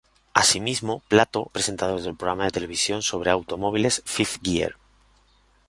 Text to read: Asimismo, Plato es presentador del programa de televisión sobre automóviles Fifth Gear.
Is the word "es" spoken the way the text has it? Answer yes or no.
no